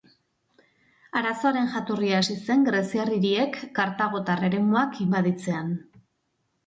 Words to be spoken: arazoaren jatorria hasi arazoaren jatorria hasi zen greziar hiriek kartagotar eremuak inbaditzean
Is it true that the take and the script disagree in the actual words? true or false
true